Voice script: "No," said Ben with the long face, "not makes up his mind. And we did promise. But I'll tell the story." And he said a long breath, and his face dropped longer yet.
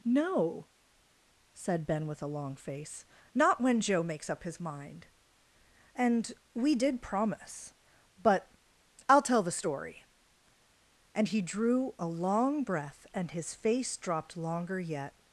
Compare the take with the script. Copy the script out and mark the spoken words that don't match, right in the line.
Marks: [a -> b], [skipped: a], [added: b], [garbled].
"No," said Ben with [the -> a] long face, "not [added: when Joe] makes up his mind. And we did promise. But I'll tell the story." And he [said -> drew] a long breath, and his face dropped longer yet.